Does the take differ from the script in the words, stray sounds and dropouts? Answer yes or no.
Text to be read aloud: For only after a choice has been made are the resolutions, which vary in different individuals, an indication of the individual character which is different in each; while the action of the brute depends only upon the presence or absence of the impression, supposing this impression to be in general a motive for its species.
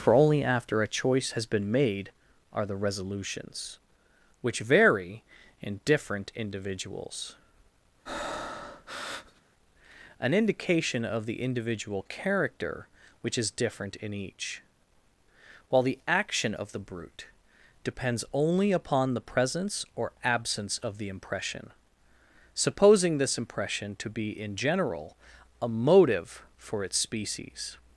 yes